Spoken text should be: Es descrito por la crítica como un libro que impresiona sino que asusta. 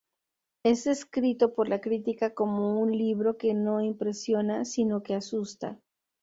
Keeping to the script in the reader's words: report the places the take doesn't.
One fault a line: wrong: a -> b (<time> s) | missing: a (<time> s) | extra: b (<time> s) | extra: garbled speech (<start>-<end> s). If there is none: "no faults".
extra: no (3.5 s)